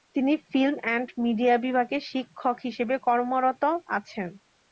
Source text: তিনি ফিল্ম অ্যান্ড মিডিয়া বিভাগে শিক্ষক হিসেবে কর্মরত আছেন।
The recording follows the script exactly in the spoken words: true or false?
true